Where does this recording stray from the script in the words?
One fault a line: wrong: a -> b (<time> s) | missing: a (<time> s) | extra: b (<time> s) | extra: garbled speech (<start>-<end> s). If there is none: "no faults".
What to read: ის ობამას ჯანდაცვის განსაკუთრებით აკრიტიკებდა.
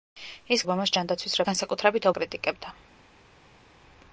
no faults